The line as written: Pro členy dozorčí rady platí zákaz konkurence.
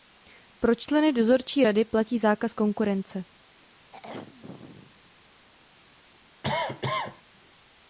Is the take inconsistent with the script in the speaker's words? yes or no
no